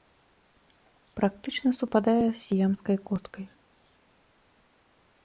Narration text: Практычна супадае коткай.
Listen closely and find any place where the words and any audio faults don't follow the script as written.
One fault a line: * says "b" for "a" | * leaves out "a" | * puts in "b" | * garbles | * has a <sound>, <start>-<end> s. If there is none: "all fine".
* puts in "з сіямскай"